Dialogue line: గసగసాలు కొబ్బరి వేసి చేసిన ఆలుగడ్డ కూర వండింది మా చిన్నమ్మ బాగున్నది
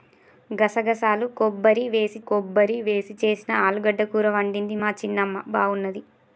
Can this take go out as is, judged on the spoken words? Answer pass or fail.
fail